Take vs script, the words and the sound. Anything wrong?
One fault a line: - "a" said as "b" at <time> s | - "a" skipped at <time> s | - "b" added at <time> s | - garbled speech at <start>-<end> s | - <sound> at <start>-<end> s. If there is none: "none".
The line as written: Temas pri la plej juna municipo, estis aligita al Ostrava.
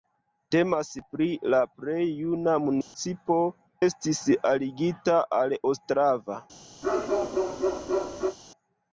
- dropout at 2.8-2.9 s
- bark at 6.8-8.4 s